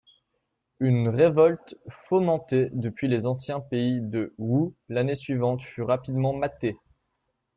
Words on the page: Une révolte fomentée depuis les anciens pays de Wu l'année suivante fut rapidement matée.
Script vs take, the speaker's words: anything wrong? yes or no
no